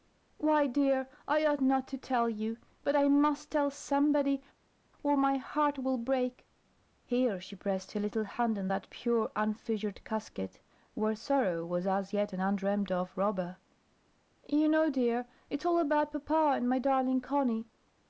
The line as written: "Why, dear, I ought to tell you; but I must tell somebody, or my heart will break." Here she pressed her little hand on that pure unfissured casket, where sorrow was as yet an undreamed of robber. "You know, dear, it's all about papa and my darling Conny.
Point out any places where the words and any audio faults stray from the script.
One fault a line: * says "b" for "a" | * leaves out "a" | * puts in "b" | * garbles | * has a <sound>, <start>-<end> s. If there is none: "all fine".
* puts in "not"